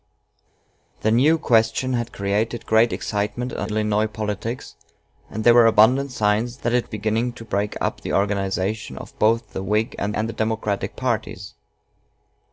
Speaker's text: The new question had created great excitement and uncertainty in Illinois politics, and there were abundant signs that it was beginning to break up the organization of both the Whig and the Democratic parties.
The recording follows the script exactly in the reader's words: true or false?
false